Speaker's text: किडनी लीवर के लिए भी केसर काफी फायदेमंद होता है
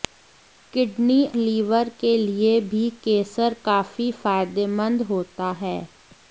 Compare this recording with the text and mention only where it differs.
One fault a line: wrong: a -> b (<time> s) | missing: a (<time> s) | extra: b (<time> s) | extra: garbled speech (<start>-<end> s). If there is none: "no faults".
no faults